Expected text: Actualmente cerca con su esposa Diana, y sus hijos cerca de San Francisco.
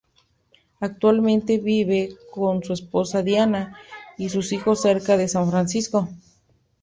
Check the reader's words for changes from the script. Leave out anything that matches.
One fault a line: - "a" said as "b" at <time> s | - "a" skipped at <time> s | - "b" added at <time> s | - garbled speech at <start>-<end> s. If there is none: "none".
- "cerca" said as "vive" at 1.6 s